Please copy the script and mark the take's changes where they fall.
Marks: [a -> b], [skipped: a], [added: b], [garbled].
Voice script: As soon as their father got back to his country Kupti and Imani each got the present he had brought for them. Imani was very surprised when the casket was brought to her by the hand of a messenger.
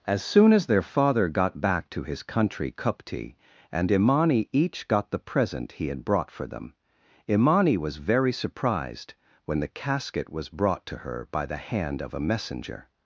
As soon as their father got back to his country Kupti and Imani each got the present he had brought for them. Imani was very surprised when the casket was brought to her by the hand of a messenger.